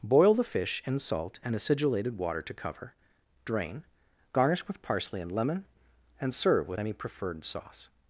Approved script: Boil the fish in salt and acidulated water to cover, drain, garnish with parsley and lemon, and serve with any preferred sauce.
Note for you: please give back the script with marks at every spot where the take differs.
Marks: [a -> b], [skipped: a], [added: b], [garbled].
Boil the fish in salt and acidulated water to cover, drain, garnish with parsley and lemon, and serve with any preferred sauce.